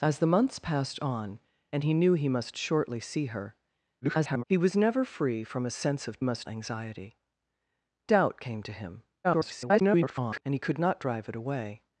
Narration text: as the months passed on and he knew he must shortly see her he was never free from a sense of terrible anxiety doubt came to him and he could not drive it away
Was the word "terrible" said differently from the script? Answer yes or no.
yes